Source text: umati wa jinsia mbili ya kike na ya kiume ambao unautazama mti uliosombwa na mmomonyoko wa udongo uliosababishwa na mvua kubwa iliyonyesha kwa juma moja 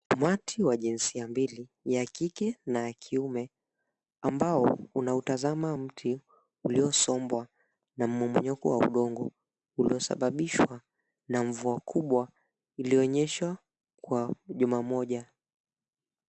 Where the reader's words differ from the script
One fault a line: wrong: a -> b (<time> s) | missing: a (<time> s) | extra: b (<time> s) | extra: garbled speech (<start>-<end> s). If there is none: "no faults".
no faults